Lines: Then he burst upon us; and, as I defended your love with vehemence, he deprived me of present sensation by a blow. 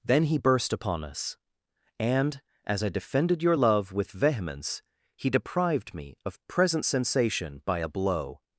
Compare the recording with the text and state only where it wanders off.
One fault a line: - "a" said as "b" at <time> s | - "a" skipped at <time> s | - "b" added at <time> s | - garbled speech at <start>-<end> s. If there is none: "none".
none